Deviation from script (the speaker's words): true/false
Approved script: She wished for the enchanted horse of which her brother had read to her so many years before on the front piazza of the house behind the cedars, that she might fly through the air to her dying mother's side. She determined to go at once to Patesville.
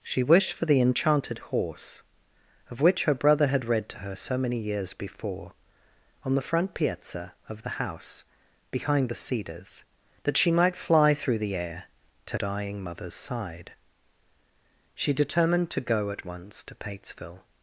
true